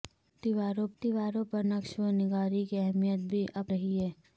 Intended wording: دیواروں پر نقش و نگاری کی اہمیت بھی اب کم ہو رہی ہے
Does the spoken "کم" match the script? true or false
false